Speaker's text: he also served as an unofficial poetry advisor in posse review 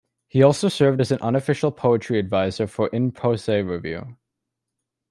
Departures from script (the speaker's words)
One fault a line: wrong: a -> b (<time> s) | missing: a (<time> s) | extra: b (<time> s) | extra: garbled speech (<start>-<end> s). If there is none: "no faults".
extra: for (2.7 s)